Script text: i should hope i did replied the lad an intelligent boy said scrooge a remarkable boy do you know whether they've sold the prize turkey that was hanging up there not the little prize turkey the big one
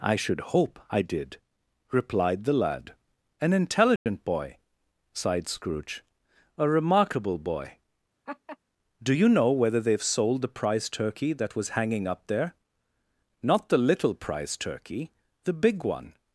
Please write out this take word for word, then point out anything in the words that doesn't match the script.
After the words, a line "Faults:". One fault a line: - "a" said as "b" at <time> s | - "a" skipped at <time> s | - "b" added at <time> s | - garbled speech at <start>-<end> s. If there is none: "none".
i should hope i did replied the lad an intelligent boy sighed scrooge a remarkable boy do you know whether they've sold the prize turkey that was hanging up there not the little prize turkey the big one
Faults:
- "said" said as "sighed" at 5.1 s